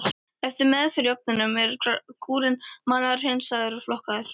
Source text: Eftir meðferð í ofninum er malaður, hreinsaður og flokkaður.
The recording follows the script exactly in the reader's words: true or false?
false